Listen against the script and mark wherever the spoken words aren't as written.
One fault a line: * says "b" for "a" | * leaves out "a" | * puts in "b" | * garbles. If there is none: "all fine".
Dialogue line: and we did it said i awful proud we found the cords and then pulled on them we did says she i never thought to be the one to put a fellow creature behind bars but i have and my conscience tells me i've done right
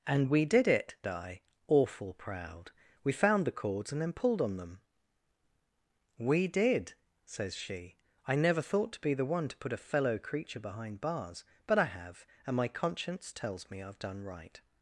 * leaves out "said"